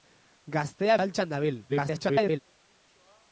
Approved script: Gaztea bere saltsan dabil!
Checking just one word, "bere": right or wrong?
wrong